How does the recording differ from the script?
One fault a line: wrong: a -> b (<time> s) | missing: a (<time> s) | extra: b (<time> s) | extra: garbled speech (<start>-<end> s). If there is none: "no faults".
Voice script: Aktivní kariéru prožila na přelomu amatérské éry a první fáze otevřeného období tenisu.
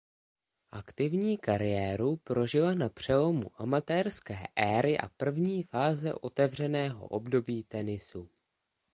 no faults